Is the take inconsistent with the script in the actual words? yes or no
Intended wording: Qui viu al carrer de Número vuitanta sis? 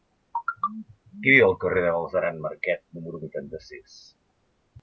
yes